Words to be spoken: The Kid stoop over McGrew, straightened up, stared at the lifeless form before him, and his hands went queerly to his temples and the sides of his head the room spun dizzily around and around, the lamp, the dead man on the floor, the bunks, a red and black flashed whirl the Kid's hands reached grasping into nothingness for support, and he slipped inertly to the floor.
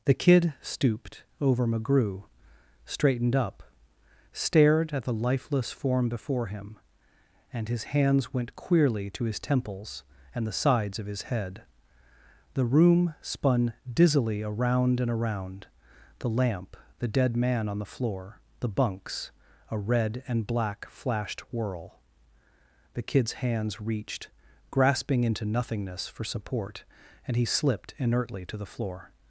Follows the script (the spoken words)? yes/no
no